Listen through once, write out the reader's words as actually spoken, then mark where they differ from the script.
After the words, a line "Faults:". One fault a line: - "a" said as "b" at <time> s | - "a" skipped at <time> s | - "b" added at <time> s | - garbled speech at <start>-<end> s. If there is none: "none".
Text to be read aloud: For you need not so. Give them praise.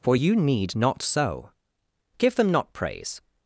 For you need not so. Give them not praise.
Faults:
- "not" added at 2.5 s